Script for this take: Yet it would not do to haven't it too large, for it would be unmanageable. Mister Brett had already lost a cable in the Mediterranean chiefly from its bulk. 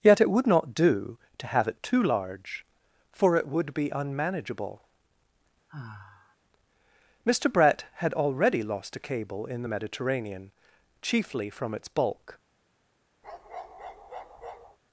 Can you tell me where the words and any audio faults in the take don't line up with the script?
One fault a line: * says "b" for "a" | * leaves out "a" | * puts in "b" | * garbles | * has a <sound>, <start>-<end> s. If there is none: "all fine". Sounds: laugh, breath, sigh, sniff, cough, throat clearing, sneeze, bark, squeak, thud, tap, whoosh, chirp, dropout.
* says "have" for "haven't"
* has a sigh, 5.7-6.4 s
* has a bark, 13.2-14.8 s